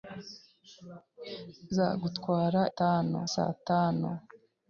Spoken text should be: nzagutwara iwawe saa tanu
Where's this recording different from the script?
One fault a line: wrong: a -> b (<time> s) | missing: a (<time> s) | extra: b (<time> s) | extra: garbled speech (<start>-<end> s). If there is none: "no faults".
wrong: iwawe -> tanu (2.8 s)